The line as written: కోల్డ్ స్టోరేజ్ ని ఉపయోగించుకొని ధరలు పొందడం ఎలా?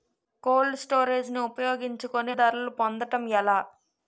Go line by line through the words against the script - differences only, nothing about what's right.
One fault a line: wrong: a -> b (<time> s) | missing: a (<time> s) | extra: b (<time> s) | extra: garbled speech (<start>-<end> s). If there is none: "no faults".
no faults